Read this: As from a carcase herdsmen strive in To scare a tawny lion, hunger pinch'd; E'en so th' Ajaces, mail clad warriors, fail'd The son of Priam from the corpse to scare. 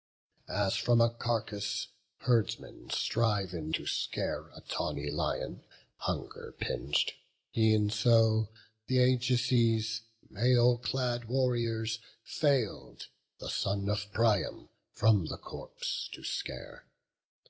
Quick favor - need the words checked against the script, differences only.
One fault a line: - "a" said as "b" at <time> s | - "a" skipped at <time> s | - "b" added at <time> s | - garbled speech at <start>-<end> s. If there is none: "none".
none